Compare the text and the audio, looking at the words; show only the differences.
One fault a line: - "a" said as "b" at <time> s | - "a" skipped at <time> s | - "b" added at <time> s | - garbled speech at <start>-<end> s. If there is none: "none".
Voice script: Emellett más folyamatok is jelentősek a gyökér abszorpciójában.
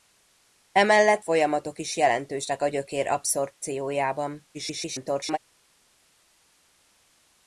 - "más" skipped at 1.2 s
- garbled speech at 4.5-5.4 s